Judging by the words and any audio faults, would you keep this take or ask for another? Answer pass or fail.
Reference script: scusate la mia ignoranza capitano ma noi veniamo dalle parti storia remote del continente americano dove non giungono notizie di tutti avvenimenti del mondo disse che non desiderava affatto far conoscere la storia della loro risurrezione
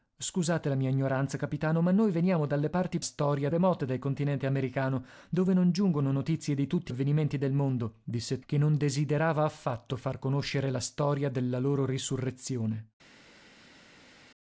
pass